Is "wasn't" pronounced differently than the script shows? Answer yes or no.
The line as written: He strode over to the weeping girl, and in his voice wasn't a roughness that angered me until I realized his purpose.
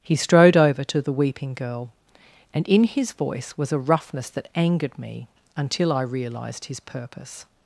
yes